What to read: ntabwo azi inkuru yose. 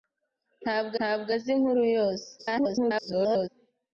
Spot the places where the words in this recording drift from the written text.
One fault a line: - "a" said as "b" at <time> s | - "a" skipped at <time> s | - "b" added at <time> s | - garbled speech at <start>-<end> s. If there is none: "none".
- "ntabwo" added at 1.0 s
- garbled speech at 2.4-3.5 s